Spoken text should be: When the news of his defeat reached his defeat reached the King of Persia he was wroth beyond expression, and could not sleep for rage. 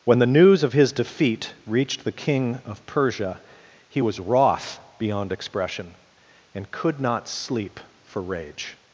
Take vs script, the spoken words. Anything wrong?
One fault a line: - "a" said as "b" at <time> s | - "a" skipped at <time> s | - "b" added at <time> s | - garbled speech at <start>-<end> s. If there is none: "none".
- "his defeat reached" skipped at 2.0 s